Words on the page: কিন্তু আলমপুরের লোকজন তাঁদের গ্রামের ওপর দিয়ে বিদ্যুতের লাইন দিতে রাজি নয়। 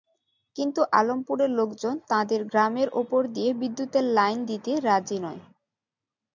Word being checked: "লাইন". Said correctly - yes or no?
yes